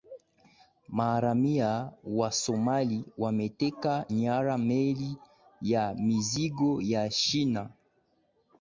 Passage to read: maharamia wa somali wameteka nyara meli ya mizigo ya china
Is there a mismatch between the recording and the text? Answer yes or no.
no